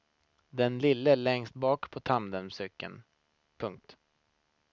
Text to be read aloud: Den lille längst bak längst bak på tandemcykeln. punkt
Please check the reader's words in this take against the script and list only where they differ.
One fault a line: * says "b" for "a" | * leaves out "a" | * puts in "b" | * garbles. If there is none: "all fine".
* leaves out "längst bak"